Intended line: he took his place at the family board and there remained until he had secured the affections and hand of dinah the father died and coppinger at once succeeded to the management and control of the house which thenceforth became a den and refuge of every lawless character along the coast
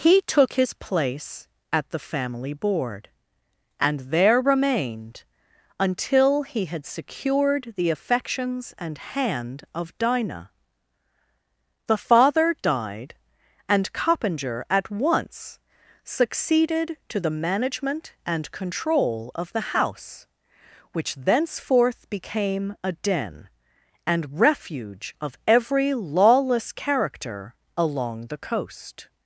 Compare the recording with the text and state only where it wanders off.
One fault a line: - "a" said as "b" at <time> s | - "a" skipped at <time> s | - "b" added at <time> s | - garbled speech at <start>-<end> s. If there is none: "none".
none